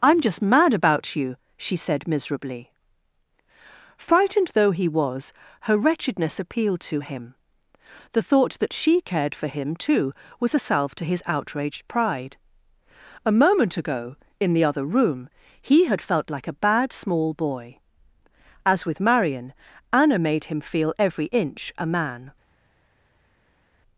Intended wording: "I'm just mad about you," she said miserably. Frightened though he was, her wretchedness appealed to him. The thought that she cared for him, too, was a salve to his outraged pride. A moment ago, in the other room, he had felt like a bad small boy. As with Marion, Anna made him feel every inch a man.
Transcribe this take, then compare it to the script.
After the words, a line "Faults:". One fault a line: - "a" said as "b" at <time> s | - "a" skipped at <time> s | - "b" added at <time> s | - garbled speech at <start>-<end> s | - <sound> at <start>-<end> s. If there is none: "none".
"I'm just mad about you," she said miserably. Frightened though he was, her wretchedness appealed to him. The thought that she cared for him, too, was a salve to his outraged pride. A moment ago, in the other room, he had felt like a bad small boy. As with Marion, Anna made him feel every inch a man.
Faults:
none